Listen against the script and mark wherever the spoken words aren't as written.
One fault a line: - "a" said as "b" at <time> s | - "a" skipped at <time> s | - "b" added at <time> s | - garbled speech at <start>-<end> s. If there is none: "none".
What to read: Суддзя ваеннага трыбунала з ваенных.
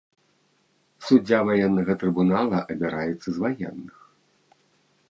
- "абіраецца" added at 2.8 s